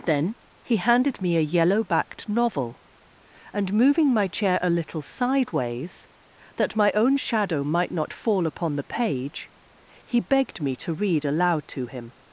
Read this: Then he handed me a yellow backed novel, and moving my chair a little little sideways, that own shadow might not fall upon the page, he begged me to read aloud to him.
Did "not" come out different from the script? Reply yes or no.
no